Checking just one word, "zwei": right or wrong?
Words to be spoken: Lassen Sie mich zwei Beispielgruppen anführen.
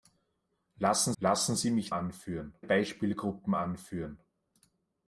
wrong